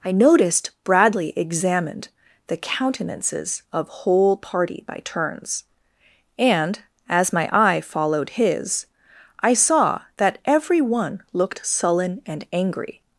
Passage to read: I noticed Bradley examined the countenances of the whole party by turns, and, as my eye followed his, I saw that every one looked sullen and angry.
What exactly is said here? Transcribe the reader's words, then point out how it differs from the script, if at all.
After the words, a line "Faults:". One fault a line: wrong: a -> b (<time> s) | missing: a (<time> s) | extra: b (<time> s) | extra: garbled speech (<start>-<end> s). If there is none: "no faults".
I noticed Bradley examined the countenances of whole party by turns, and, as my eye followed his, I saw that every one looked sullen and angry.
Faults:
missing: the (3.9 s)